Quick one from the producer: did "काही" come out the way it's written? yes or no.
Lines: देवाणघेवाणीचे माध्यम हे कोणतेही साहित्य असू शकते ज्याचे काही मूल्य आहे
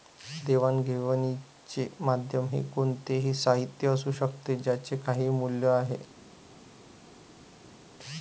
yes